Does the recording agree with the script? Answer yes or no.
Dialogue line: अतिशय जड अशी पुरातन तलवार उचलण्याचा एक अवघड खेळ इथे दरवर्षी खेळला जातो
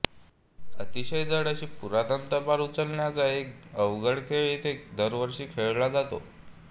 yes